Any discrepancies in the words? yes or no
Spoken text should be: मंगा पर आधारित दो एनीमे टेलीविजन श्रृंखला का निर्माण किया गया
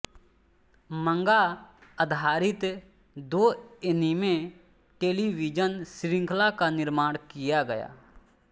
yes